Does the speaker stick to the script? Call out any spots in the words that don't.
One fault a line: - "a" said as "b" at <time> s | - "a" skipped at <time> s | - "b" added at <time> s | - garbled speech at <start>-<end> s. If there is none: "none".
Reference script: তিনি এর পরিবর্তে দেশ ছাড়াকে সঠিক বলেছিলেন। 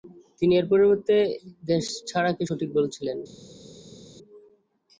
none